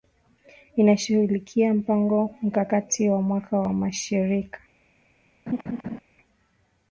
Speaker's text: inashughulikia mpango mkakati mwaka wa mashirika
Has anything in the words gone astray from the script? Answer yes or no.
yes